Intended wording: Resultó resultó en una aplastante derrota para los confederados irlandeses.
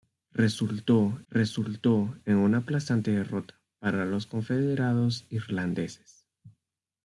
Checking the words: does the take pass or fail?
pass